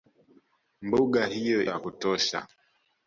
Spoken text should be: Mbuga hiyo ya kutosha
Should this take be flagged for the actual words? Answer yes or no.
no